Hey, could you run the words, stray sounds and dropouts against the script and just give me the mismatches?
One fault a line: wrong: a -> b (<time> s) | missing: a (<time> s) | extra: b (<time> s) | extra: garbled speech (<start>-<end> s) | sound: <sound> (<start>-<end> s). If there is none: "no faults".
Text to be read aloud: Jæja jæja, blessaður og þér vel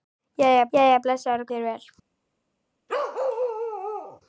sound: bark (2.9-4.2 s)